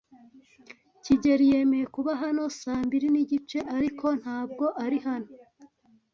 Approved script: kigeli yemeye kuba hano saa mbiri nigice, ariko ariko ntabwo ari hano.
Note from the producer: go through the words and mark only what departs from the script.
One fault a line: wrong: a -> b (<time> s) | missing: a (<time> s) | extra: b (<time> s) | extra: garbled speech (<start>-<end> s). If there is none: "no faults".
missing: ariko (4.1 s)